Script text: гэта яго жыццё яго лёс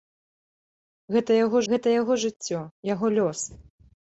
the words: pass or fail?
fail